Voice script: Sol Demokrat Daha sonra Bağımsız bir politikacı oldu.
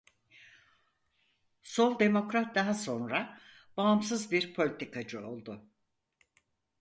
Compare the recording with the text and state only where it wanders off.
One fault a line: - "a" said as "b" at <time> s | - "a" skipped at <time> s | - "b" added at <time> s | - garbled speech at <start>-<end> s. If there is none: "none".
none